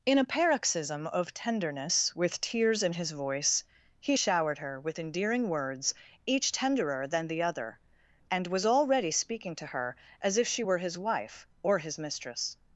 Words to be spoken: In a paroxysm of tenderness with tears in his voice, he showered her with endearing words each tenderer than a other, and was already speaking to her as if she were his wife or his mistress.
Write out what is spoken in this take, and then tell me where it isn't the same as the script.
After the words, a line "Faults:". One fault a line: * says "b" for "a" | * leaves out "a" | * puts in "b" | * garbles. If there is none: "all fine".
In a paroxysm of tenderness with tears in his voice, he showered her with endearing words each tenderer than the other, and was already speaking to her as if she were his wife or his mistress.
Faults:
* says "the" for "a"